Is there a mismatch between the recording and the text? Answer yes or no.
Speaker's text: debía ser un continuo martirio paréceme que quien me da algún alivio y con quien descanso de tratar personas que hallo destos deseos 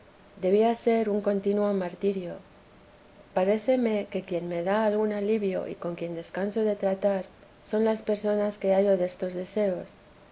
yes